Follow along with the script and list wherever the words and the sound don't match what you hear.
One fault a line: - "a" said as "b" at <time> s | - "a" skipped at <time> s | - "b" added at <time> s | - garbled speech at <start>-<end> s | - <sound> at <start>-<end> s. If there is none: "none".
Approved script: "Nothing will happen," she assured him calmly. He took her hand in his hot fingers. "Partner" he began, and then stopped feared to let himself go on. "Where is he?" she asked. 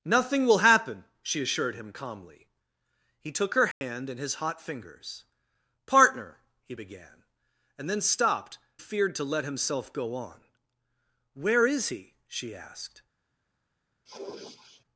- dropout at 3.7-3.8 s
- sniff at 14.1-14.8 s